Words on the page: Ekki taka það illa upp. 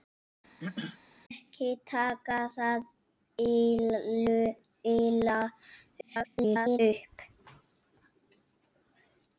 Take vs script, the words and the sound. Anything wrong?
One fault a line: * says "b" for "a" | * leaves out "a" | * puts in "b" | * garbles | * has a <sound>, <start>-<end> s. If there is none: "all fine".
* has a throat clearing, 0.6-1.0 s
* garbles